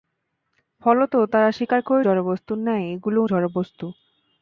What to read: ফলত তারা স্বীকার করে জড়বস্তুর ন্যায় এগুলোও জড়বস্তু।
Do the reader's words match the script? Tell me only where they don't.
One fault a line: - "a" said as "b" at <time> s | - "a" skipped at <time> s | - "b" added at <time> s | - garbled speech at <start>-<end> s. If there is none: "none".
none